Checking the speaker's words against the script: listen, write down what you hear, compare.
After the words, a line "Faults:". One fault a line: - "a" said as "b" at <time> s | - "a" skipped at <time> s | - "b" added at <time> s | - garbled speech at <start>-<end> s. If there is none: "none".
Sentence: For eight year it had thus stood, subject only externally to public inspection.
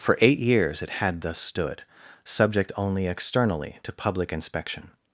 For eight years it had thus stood, subject only externally to public inspection.
Faults:
- "year" said as "years" at 0.4 s